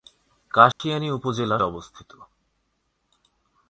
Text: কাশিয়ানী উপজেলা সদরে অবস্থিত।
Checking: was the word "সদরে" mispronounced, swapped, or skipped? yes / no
yes